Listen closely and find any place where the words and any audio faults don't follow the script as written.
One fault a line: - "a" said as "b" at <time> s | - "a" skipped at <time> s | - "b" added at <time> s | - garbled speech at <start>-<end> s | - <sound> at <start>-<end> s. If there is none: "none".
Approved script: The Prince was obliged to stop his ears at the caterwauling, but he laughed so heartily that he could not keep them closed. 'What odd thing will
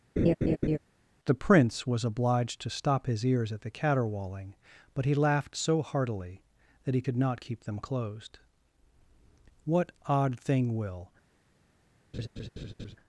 - laugh at 0.2-0.8 s
- laugh at 12.1-13.0 s